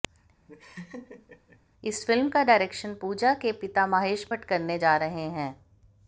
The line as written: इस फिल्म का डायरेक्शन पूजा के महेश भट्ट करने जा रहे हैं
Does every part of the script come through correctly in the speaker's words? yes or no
no